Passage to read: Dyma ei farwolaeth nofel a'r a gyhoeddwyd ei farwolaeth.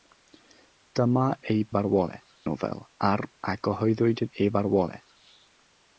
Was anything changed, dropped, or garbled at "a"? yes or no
no